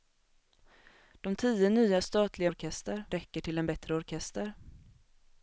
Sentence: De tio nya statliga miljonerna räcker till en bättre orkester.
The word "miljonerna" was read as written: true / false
false